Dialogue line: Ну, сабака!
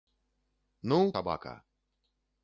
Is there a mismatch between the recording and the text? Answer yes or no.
no